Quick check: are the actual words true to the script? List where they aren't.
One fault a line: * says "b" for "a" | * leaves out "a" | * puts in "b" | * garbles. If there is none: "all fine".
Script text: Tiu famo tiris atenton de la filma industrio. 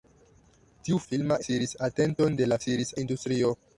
* says "filma" for "famo"
* says "tiris" for "filma"